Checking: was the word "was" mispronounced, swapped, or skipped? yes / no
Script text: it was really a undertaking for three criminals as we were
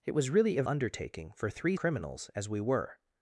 no